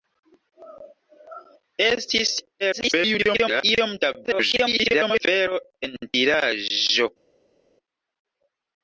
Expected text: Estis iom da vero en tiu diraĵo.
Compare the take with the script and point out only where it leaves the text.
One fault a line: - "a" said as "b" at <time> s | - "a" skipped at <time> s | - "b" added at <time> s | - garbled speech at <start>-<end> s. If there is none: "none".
- garbled speech at 2.6-3.6 s
- garbled speech at 4.2-5.2 s
- "tiu" skipped at 6.0 s